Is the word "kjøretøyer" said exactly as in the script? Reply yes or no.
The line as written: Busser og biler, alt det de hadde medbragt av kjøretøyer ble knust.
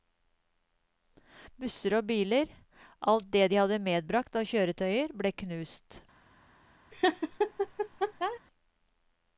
yes